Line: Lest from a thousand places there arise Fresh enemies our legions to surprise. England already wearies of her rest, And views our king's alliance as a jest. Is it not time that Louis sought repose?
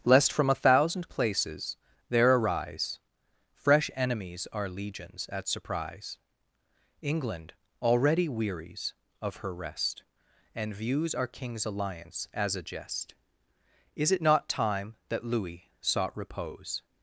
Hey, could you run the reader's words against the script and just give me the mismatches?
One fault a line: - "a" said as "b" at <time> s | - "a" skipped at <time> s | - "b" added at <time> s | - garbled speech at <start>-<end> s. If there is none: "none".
- "to" said as "at" at 5.3 s